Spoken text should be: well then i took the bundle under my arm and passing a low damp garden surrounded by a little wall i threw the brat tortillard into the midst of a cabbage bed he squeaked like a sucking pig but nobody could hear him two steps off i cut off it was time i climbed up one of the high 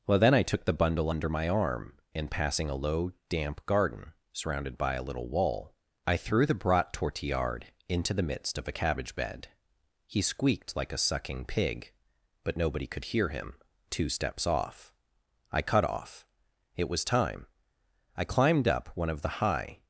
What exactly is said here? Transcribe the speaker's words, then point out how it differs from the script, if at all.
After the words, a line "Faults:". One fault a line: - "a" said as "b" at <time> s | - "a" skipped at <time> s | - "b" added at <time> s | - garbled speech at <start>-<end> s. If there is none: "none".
well then i took the bundle under my arm and passing a low damp garden surrounded by a little wall i threw the brat tortillard into the midst of a cabbage bed he squeaked like a sucking pig but nobody could hear him two steps off i cut off it was time i climbed up one of the high
Faults:
none